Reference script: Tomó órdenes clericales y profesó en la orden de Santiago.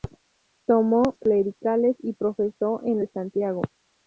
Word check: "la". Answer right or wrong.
wrong